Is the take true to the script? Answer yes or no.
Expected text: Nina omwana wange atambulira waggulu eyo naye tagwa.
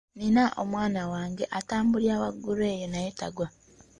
yes